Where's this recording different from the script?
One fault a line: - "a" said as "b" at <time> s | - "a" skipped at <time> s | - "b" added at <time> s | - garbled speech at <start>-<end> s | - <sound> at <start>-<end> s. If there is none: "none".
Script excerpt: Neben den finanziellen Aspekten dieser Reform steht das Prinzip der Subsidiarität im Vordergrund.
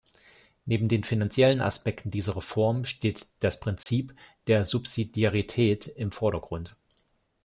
- dropout at 3.8-3.9 s